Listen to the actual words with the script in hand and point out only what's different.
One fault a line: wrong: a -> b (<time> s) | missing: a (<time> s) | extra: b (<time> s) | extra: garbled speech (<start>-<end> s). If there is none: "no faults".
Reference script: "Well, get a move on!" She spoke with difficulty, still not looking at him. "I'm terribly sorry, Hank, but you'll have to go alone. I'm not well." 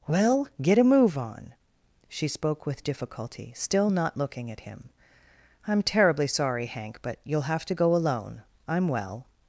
missing: not (8.9 s)